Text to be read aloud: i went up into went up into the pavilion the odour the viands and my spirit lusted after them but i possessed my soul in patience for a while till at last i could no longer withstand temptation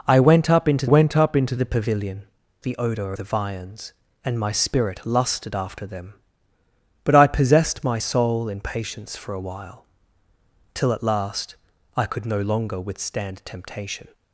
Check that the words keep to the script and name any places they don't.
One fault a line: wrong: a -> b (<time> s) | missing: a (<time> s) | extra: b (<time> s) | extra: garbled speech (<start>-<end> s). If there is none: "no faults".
no faults